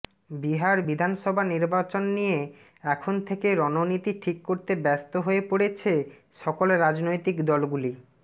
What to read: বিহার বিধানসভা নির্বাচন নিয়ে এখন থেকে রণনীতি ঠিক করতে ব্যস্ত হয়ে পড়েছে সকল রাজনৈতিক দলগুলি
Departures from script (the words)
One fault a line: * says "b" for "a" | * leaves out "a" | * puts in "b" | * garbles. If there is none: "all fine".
all fine